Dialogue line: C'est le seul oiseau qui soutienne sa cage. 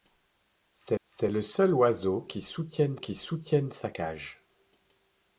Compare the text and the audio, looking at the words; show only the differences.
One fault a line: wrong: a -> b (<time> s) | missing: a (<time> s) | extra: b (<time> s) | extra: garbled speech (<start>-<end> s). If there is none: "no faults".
extra: c'est (1.0 s)
extra: qui soutienne (3.0 s)